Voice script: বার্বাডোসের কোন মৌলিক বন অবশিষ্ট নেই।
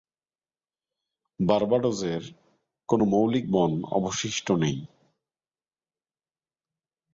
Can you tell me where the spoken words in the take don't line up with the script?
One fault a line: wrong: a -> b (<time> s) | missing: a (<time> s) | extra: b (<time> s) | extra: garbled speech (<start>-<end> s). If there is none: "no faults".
no faults